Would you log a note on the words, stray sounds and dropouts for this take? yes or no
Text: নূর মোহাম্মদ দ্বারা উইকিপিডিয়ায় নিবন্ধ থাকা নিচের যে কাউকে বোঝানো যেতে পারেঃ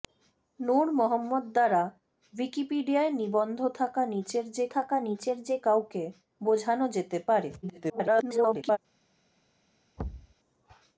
yes